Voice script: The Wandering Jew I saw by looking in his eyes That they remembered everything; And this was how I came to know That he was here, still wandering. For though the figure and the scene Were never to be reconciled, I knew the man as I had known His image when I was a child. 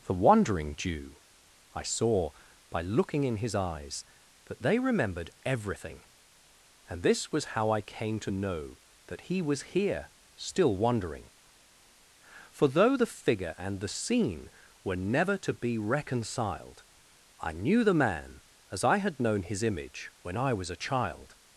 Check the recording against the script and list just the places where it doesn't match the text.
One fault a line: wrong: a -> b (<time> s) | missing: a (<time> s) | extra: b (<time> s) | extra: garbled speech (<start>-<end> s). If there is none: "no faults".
no faults